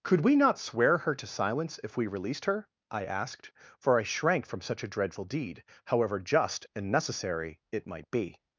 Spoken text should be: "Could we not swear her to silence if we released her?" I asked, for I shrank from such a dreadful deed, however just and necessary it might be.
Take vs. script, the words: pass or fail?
pass